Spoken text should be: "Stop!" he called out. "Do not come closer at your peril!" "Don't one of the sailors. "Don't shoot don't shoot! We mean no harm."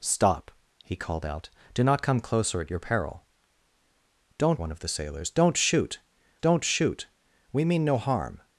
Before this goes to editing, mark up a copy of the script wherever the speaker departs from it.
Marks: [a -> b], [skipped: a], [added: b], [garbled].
"Stop!" he called out. "Do not come closer at your peril!" "Don't one of the sailors. "Don't shoot don't shoot! We mean no harm."